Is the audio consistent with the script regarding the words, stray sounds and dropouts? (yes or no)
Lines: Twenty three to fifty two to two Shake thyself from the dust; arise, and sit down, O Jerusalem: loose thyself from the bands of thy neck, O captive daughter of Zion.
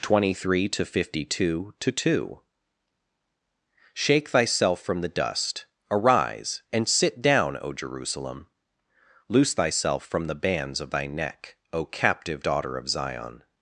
yes